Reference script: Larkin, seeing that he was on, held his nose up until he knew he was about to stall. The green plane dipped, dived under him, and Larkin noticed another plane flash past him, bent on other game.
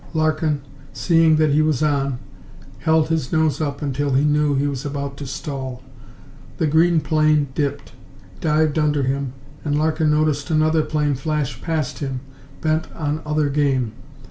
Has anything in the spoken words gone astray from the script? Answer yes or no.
no